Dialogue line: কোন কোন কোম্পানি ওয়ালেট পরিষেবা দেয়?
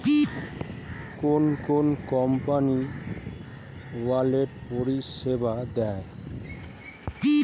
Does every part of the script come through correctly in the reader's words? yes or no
yes